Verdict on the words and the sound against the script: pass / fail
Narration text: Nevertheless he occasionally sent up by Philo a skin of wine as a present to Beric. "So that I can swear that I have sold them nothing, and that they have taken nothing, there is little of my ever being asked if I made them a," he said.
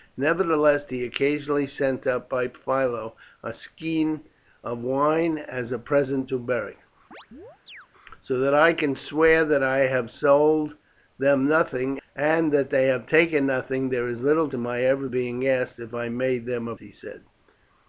fail